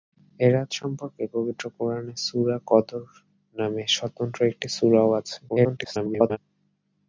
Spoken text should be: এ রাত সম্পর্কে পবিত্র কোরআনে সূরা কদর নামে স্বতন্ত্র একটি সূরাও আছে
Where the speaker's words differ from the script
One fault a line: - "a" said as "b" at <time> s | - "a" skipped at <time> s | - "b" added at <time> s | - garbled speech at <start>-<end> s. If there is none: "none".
- garbled speech at 5.5-6.4 s